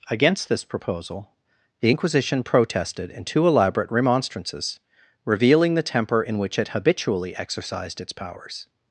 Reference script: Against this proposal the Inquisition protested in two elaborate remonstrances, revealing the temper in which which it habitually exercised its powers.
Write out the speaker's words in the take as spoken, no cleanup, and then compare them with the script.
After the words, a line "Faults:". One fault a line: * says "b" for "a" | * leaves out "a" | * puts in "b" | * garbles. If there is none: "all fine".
Against this proposal the Inquisition protested in two elaborate remonstrances, revealing the temper in which it habitually exercised its powers.
Faults:
* leaves out "which"